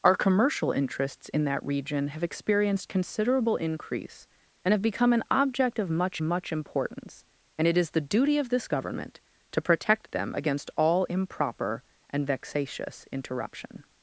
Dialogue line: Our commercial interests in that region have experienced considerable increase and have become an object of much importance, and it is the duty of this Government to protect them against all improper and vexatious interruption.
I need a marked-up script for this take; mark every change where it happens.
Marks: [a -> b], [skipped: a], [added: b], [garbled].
Our commercial interests in that region have experienced considerable increase and have become an object of much [added: much] importance, and it is the duty of this Government to protect them against all improper and vexatious interruption.